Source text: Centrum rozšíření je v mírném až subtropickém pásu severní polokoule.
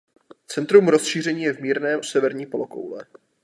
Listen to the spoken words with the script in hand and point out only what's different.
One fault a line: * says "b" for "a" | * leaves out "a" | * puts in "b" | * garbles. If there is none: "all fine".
* leaves out "až subtropickém pásu"